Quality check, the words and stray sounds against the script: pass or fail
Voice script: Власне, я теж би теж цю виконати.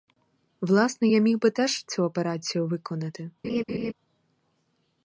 fail